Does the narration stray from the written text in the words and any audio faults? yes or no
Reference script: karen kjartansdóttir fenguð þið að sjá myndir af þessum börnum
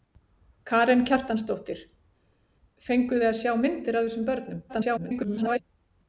yes